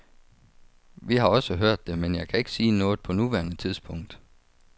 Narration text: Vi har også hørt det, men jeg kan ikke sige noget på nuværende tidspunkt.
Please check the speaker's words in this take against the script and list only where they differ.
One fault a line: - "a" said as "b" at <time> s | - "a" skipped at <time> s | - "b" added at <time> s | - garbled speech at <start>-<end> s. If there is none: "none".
none